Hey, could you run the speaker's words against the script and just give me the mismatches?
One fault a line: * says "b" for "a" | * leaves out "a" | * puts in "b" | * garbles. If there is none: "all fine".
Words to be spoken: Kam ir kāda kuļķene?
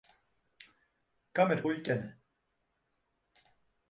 * leaves out "kāda"